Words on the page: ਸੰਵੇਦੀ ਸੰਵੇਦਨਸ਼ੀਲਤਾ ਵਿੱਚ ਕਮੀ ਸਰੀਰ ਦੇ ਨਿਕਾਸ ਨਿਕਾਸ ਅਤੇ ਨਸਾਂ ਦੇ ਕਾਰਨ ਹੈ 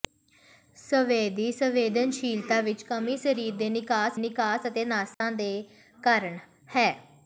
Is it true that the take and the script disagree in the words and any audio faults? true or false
true